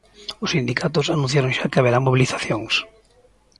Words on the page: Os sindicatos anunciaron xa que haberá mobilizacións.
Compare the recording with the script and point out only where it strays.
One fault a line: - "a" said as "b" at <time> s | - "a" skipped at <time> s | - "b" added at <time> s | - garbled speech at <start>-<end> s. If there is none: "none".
none